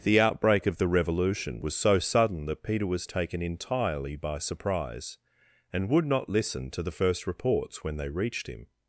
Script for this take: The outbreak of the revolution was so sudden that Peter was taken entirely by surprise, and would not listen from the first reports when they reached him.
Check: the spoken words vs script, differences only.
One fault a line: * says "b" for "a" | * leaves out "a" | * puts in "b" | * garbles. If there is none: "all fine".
* says "to" for "from"